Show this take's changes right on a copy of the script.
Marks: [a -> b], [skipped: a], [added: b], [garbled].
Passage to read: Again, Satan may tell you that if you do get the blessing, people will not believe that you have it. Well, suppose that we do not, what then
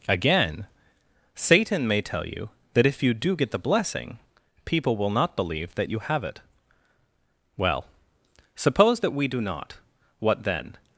Again, Satan may tell you that if you do get the blessing, people will not believe that you have it. Well, suppose that we do not, what then